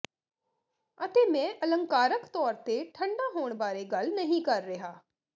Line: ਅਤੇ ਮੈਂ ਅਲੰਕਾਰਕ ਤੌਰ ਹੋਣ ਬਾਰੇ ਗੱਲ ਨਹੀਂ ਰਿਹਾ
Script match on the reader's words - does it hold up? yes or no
no